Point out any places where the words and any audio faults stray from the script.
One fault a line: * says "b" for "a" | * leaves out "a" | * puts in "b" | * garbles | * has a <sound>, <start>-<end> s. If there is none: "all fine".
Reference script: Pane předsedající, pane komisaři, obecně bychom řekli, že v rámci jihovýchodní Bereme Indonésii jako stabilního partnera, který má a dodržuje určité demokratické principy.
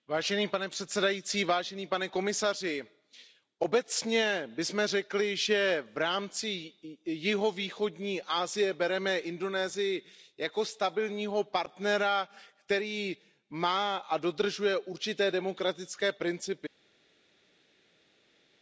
* puts in "Asie"